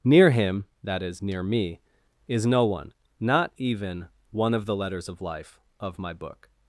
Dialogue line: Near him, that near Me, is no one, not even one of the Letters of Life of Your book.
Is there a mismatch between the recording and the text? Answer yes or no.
yes